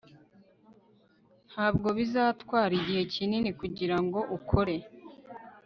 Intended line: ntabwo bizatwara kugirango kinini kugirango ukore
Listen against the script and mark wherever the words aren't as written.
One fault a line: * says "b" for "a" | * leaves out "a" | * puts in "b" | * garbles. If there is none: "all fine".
* says "igihe" for "kugirango"